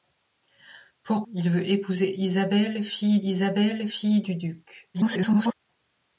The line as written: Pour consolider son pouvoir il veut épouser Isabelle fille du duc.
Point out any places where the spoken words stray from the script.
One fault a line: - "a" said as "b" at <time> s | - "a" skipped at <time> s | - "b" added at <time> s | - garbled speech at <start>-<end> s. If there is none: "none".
- "consolider son pouvoir" skipped at 1.2 s
- "Isabelle fille" added at 3.2 s
- garbled speech at 4.9-5.5 s